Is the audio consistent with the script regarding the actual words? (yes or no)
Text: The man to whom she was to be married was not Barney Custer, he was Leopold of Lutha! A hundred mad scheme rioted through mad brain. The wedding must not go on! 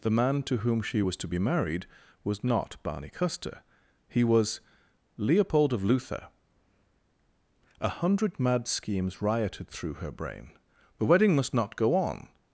no